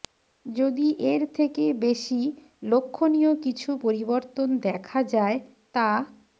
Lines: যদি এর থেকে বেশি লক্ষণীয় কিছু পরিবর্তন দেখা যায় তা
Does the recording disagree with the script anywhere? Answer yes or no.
no